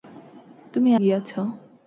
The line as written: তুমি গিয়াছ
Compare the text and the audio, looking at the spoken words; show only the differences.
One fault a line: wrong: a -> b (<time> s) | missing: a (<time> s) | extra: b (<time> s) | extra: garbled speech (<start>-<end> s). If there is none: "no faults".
no faults